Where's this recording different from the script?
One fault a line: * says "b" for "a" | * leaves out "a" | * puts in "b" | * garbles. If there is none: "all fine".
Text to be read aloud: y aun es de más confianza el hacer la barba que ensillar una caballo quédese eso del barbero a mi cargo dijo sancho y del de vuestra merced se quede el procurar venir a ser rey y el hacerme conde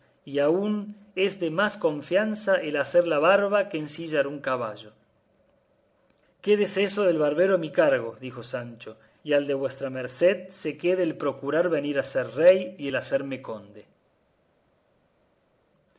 * says "un" for "una"
* says "al" for "del"